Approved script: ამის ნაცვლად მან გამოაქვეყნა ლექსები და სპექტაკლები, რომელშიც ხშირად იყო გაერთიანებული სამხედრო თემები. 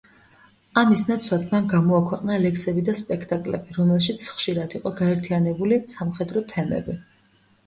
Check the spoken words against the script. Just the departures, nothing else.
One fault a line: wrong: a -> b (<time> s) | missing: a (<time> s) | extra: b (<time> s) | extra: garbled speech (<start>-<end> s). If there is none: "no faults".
no faults